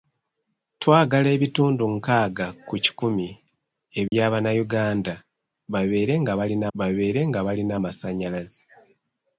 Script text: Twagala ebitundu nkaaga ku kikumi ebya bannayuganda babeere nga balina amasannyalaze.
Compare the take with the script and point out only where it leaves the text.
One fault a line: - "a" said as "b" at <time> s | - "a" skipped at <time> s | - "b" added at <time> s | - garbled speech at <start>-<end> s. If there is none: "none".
- "babeere nga balina" added at 6.8 s